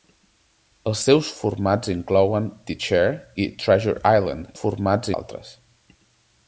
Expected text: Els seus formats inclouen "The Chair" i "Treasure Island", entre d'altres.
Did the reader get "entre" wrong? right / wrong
wrong